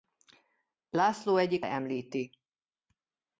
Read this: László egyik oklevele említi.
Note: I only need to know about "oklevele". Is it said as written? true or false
false